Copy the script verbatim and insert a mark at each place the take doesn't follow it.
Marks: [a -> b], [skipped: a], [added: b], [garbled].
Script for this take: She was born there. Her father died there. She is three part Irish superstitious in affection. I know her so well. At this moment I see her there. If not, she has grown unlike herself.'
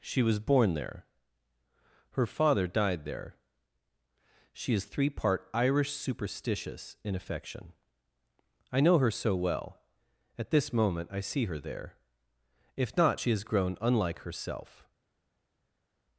She was born there. Her father died there. She is three part Irish superstitious in affection. I know her so well. At this moment I see her there. If not, she has grown unlike herself.'